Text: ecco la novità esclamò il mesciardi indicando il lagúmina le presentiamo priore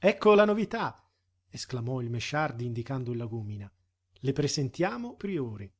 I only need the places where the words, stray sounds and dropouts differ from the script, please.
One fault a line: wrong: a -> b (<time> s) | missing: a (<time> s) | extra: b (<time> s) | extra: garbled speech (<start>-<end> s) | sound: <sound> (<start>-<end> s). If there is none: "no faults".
no faults